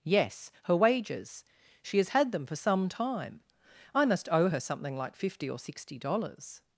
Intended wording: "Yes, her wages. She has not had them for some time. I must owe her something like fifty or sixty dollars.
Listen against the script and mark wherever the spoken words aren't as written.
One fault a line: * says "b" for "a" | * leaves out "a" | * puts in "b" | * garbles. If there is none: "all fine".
* leaves out "not"